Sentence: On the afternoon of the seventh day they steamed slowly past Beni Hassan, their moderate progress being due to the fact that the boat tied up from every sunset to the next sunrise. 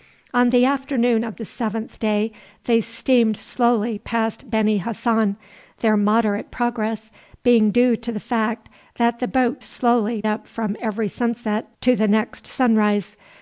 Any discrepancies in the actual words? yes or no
yes